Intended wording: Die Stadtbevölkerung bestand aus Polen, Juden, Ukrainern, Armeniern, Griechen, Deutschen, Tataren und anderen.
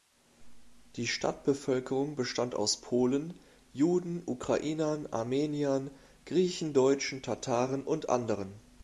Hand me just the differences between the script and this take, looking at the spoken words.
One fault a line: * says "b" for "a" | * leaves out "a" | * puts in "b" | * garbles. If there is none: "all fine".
all fine